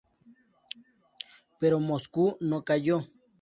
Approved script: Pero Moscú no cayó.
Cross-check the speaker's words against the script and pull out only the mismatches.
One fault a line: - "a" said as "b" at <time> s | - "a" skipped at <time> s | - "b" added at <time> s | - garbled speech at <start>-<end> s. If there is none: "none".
none